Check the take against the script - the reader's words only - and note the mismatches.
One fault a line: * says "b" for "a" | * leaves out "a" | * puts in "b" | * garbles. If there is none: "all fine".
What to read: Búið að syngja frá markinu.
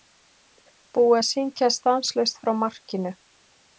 * puts in "stanslaust"